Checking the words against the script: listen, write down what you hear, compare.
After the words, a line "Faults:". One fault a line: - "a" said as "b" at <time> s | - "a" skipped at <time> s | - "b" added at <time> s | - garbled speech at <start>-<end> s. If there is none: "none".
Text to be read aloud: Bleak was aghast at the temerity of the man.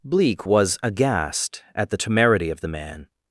Bleak was aghast at the temerity of the man.
Faults:
none